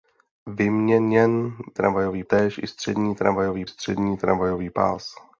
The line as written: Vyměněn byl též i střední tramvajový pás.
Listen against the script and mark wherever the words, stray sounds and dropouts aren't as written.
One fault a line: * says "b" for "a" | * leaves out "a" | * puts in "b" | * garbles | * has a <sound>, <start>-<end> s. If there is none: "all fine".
* says "tramvajový" for "byl"
* puts in "střední tramvajový"